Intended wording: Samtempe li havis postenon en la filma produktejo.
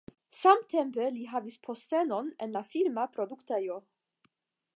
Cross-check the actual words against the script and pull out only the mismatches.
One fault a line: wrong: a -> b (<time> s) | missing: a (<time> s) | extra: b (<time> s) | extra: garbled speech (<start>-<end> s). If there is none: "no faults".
no faults